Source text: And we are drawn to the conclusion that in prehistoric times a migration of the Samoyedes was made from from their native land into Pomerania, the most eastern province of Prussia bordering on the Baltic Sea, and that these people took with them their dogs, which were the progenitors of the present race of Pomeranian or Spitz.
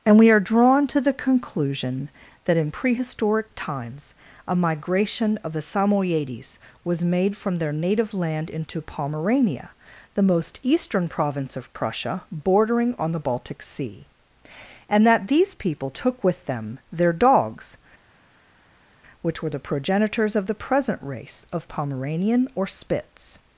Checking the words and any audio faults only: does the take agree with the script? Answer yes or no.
no